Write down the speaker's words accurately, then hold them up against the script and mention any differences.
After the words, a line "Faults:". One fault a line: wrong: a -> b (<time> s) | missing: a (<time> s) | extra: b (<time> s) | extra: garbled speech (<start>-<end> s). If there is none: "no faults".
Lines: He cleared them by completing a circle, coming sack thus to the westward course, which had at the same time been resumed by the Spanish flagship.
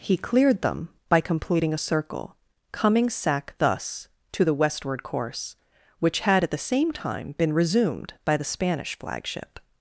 He cleared them by completing a circle, coming sack thus to the westward course, which had at the same time been resumed by the Spanish flagship.
Faults:
no faults